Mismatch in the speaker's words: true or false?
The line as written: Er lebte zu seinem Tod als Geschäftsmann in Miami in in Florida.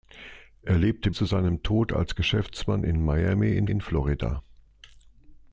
false